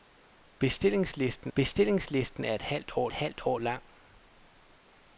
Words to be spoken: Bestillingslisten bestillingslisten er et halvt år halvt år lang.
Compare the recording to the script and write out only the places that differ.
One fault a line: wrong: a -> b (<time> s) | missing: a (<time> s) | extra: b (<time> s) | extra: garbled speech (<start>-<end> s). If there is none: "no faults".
no faults